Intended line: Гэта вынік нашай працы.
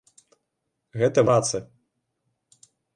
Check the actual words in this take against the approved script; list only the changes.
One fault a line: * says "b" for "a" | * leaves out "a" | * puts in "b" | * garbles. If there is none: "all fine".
* leaves out "вынік нашай"